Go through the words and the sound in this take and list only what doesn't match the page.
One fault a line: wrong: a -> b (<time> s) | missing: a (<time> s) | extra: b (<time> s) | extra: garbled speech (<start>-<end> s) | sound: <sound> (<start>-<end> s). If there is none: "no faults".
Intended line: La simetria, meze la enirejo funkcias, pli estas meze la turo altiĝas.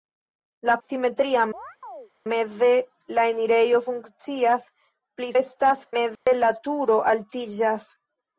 sound: chirp (1.5-2.1 s)
sound: dropout (6.2-6.3 s)